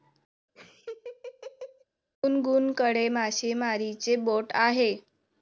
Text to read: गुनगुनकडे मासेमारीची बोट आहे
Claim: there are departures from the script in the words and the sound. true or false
true